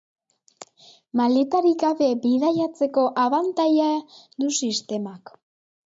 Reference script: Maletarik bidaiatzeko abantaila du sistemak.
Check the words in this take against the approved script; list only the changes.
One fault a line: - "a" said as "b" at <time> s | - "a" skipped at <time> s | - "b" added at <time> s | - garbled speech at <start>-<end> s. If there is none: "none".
- "gabe" added at 1.9 s